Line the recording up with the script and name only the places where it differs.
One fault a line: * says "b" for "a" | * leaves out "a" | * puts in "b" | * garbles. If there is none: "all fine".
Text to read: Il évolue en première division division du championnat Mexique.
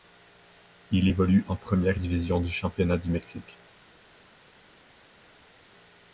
* leaves out "division"
* puts in "du"